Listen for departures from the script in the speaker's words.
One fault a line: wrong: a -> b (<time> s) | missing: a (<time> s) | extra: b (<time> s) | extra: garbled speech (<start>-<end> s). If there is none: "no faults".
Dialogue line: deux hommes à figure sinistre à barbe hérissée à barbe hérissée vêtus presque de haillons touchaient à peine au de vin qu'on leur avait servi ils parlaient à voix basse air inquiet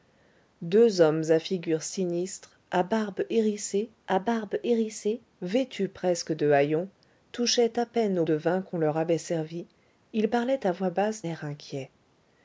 no faults